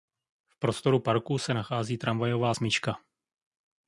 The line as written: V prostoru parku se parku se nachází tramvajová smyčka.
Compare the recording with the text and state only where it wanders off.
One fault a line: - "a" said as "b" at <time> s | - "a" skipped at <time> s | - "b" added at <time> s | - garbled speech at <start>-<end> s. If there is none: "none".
- "parku se" skipped at 1.5 s